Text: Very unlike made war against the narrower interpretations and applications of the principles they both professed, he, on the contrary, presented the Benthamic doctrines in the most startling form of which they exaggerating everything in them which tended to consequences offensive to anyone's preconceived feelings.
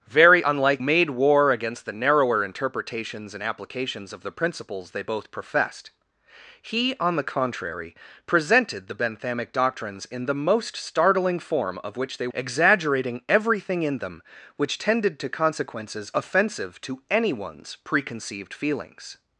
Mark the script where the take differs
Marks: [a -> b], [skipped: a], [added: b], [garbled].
Very unlike made war against the narrower interpretations and applications of the principles they both professed, he, on the contrary, presented the Benthamic doctrines in the most startling form of which they exaggerating everything in them which tended to consequences offensive to anyone's preconceived feelings.